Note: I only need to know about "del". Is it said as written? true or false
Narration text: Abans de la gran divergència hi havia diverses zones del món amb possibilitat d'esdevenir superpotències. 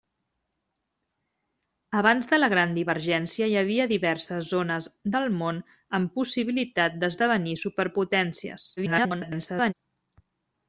true